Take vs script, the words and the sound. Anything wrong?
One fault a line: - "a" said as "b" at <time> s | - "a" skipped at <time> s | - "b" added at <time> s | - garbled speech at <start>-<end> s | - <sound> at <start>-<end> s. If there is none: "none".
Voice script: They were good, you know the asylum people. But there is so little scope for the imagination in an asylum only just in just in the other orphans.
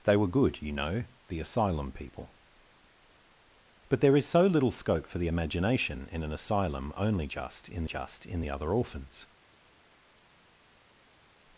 none